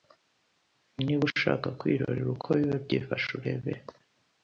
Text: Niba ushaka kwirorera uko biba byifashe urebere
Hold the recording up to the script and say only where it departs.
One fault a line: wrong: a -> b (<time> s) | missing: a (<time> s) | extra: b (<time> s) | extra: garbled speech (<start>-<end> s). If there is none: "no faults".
no faults